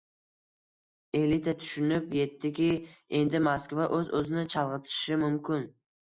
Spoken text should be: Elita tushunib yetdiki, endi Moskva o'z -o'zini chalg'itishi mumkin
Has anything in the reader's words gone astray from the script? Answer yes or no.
no